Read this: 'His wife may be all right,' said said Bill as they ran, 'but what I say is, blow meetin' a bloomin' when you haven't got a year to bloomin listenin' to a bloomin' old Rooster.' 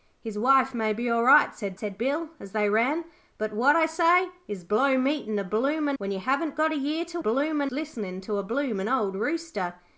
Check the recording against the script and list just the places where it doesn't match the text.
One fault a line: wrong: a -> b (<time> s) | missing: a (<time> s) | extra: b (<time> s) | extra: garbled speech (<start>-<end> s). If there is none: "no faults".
no faults